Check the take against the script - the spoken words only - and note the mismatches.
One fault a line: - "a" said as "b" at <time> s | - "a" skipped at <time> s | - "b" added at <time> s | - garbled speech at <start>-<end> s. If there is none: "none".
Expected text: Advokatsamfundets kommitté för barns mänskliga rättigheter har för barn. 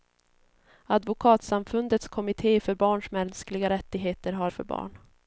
none